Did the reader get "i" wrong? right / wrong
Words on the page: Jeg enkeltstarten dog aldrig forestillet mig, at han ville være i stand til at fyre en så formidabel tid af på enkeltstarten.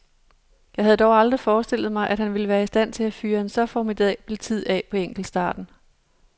right